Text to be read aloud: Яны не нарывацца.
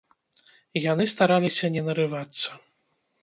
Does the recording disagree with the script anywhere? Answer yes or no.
yes